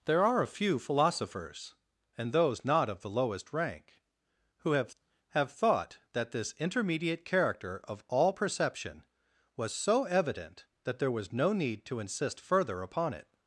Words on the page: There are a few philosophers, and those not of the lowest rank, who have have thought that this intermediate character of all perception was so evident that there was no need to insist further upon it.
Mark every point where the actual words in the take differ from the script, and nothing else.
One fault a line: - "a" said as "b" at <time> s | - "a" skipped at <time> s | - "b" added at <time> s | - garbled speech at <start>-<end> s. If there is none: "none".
none